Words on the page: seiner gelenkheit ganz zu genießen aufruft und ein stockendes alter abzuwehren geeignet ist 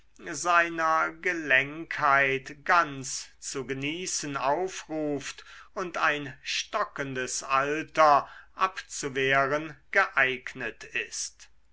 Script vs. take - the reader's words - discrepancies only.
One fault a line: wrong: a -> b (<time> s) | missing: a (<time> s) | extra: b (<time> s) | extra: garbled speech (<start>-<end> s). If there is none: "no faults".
no faults